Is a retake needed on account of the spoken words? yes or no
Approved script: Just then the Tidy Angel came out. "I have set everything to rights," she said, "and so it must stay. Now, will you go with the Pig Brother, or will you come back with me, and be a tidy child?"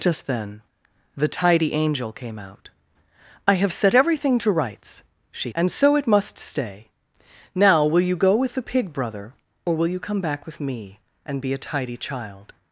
yes